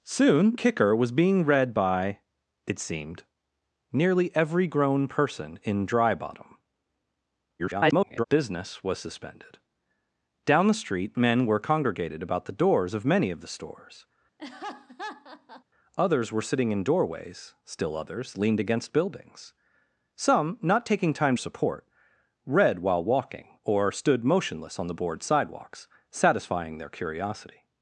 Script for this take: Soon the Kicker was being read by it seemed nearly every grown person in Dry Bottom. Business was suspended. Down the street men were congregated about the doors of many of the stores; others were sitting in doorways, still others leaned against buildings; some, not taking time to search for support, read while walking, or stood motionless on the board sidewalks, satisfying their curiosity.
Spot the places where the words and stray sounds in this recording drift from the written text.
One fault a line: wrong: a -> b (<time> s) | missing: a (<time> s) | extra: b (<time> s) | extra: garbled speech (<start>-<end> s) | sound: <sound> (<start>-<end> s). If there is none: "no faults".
missing: the (0.6 s)
extra: garbled speech (7.6-8.2 s)
sound: laugh (14.4-15.6 s)
missing: to search for (21.4 s)